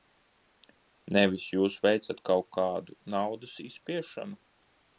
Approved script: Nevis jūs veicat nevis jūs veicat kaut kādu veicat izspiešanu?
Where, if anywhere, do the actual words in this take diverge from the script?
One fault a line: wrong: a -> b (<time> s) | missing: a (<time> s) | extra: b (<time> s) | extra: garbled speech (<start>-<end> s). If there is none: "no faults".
missing: nevis jūs veicat (2.2 s)
wrong: veicat -> naudas (3.2 s)